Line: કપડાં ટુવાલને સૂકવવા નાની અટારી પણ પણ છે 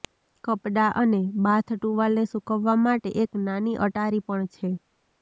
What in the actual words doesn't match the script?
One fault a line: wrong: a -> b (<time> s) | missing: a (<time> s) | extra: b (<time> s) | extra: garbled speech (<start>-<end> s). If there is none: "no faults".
extra: અને બાથ (1.0 s)
extra: માટે એક (2.8 s)
missing: પણ (4.5 s)